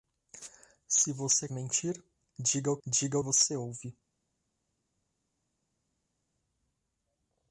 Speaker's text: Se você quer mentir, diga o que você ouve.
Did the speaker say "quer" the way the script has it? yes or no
no